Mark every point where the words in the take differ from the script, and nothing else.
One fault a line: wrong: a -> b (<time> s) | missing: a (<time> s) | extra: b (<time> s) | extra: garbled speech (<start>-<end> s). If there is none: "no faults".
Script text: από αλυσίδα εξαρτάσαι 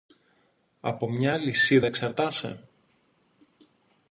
extra: μια (1.1 s)